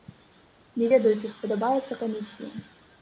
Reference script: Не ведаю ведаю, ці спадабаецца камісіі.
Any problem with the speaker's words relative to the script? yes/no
yes